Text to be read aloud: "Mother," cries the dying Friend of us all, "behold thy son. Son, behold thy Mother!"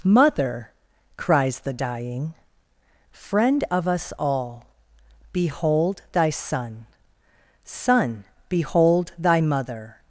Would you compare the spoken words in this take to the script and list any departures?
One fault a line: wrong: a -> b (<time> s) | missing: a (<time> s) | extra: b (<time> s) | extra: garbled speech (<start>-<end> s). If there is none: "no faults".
no faults